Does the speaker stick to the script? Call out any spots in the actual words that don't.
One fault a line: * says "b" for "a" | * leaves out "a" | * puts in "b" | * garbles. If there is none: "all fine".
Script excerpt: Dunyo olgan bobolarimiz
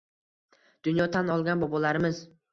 * puts in "tan"